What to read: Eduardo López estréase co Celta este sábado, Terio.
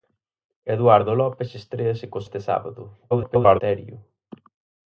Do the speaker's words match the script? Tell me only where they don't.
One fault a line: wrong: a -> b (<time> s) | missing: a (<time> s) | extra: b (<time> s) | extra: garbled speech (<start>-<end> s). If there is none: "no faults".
missing: Celta (2.2 s)
extra: garbled speech (3.1-3.6 s)